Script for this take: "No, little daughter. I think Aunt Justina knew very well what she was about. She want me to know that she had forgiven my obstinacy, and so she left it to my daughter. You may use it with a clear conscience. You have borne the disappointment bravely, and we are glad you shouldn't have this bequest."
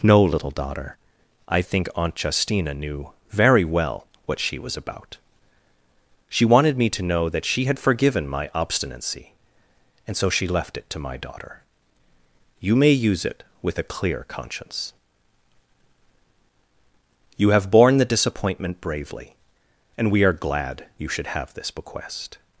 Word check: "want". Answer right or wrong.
wrong